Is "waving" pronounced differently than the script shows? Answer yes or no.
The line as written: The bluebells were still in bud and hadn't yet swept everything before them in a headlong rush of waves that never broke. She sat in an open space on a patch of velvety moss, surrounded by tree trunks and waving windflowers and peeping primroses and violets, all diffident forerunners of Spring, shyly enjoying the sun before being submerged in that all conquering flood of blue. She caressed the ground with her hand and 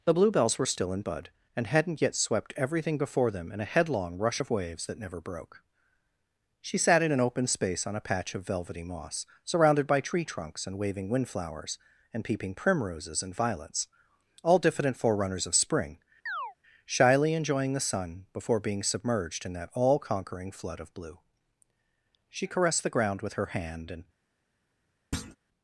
no